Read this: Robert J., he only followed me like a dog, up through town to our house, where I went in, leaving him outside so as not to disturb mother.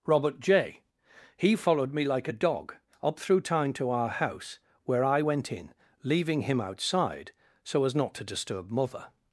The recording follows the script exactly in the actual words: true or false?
false